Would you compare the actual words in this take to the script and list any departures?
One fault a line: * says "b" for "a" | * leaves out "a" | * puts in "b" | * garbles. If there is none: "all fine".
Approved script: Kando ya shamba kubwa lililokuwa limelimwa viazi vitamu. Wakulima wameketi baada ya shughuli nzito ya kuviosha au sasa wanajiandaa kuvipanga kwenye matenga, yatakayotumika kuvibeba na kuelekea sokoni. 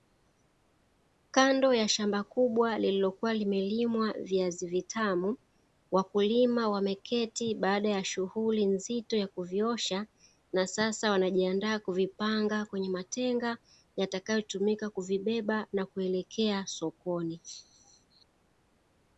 * says "na" for "au"